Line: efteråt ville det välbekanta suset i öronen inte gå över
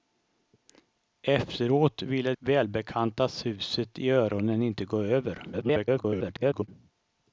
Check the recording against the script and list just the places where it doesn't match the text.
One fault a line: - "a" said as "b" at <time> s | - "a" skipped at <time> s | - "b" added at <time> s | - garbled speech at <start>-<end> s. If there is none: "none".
- "det" skipped at 2.3 s
- garbled speech at 5.5-6.7 s